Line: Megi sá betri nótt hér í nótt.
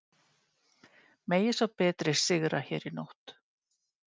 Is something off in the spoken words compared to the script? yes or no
yes